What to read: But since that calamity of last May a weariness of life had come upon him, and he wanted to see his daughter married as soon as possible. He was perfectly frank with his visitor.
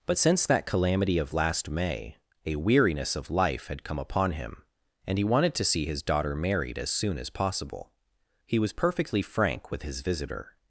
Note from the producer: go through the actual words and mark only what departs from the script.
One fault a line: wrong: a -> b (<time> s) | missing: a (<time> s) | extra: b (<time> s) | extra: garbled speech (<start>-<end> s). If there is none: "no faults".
no faults